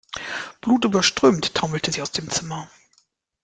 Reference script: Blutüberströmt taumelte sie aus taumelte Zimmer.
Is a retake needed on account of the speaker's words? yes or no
yes